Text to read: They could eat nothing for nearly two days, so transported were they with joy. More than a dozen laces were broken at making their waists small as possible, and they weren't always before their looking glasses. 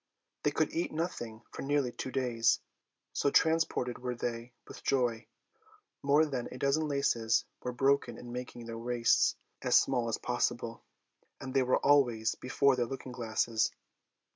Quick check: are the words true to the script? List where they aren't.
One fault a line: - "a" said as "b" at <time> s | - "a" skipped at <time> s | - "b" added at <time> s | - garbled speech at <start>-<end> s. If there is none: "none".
- "at" said as "in" at 8.2 s
- "as" added at 9.6 s
- "weren't" said as "were" at 11.6 s